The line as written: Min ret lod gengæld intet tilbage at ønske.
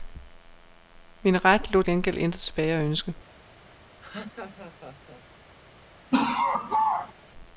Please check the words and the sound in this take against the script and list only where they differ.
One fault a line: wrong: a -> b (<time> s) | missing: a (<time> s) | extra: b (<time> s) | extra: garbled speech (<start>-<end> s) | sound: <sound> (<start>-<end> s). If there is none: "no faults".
sound: laugh (4.0-5.2 s)
sound: laugh (6.1-7.1 s)